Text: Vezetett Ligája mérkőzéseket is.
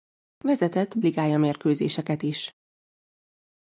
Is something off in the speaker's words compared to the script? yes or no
no